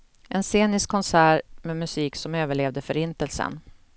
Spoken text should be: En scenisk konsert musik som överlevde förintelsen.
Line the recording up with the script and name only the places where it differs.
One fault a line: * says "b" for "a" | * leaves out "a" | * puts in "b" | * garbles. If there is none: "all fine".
* puts in "med"